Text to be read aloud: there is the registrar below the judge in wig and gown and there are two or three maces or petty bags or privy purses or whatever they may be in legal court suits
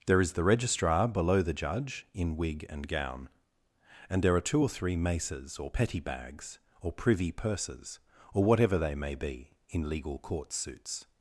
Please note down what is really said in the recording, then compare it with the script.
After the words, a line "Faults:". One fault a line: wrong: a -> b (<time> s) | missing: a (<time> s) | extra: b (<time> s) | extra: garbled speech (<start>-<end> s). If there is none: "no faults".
there is the registrar below the judge in wig and gown and there are two or three maces or petty bags or privy purses or whatever they may be in legal court suits
Faults:
no faults